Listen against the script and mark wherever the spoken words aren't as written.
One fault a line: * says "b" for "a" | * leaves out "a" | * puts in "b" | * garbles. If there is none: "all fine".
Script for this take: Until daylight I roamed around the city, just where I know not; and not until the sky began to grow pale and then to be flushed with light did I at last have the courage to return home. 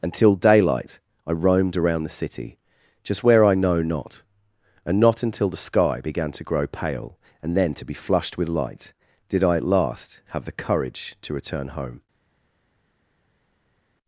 all fine